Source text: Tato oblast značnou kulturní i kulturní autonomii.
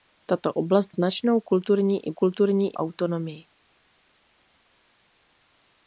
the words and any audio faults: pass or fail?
pass